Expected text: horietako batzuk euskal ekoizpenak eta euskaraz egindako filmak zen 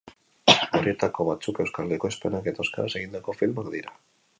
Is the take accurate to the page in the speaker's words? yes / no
no